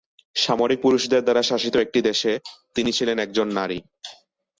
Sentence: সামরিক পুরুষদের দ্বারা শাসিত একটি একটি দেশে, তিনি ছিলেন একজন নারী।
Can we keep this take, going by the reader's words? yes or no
no